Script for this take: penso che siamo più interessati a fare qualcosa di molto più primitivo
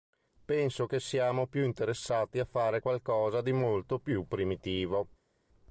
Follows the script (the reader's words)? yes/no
yes